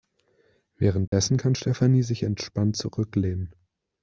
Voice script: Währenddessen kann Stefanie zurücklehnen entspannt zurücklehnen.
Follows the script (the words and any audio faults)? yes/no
no